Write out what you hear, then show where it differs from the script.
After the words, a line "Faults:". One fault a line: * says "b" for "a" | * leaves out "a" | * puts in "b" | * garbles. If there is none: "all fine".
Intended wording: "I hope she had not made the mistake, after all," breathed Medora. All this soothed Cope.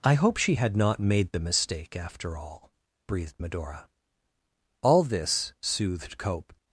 "I hope she had not made the mistake, after all," breathed Medora. All this soothed Cope.
Faults:
all fine